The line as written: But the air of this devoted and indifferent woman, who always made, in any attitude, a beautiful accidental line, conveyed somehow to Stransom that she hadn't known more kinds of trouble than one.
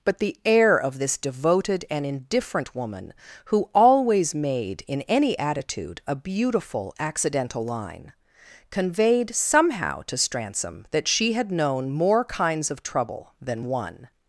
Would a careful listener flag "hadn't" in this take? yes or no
yes